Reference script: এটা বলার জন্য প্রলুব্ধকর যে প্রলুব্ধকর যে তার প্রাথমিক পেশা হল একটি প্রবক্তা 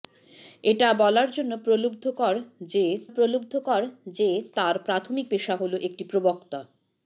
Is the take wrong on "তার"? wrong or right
right